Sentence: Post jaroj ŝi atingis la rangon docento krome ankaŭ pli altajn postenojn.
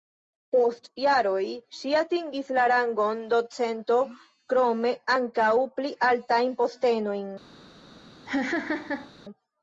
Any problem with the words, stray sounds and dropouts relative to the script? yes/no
yes